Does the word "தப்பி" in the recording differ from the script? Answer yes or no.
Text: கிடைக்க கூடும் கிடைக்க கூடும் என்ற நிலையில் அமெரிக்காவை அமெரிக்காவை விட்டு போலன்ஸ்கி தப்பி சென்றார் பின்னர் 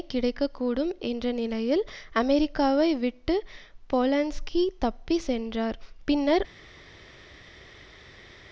no